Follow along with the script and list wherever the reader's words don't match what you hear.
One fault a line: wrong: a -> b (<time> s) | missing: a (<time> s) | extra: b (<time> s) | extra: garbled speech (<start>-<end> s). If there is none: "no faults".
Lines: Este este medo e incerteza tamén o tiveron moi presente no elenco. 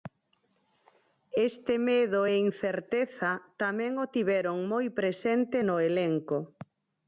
missing: este (1.7 s)